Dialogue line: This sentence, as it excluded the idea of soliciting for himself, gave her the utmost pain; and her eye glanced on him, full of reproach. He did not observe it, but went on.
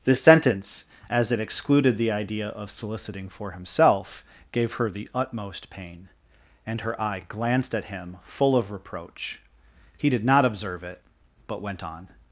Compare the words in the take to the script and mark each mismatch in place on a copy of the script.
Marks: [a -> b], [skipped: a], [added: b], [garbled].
This sentence, as it excluded the idea of soliciting for himself, gave her the utmost pain; and her eye glanced [on -> at] him, full of reproach. He did not observe it, but went on.